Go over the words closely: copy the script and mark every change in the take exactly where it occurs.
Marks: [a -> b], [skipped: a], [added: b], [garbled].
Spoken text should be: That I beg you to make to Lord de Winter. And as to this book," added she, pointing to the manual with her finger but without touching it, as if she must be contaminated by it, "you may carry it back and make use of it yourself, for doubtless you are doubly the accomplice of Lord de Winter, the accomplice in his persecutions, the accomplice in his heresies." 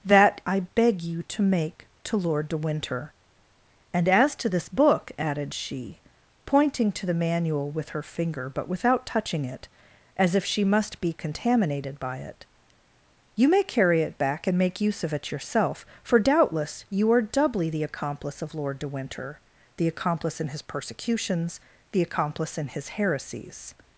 That I beg you to make to Lord de Winter. And as to this book," added she, pointing to the manual with her finger but without touching it, as if she must be contaminated by it, "you may carry it back and make use of it yourself, for doubtless you are doubly the accomplice of Lord de Winter, the accomplice in his persecutions, the accomplice in his heresies."